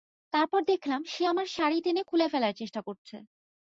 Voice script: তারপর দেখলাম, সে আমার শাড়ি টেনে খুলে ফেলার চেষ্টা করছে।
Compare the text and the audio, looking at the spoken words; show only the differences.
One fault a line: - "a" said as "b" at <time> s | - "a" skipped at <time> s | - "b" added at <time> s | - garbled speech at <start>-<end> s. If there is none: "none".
none